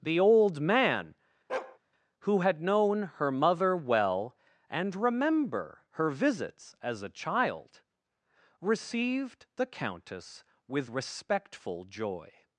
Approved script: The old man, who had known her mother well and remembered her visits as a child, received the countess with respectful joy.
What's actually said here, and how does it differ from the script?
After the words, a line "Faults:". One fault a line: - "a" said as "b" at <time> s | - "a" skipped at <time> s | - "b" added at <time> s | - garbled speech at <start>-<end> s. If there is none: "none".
The old man, who had known her mother well and remember her visits as a child, received the countess with respectful joy.
Faults:
- "remembered" said as "remember" at 4.9 s